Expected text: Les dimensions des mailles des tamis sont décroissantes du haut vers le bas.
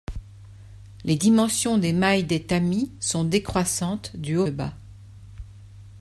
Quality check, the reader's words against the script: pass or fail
fail